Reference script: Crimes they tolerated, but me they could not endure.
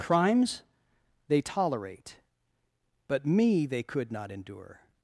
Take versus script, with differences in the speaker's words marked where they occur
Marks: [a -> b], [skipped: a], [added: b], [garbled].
Crimes they [tolerated, -> tolerate] but me they could not endure.